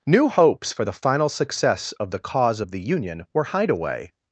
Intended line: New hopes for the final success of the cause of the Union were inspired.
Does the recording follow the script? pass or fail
fail